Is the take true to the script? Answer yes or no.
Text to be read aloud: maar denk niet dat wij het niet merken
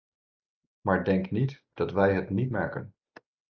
yes